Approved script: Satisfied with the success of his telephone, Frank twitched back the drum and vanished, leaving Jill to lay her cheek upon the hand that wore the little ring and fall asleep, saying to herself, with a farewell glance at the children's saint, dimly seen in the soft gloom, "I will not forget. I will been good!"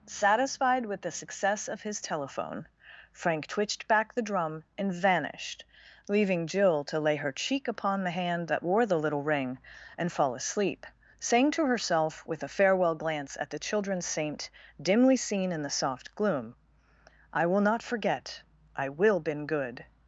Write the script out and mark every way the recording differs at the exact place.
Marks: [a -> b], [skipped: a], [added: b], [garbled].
Satisfied with the success of his telephone, Frank twitched back the drum and vanished, leaving Jill to lay her cheek upon the hand that wore the little ring and fall asleep, saying to herself, with a farewell glance at the children's saint, dimly seen in the soft gloom, "I will not forget. I will been good!"